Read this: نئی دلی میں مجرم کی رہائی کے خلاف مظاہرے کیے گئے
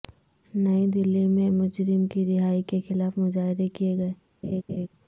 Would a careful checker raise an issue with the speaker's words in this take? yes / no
no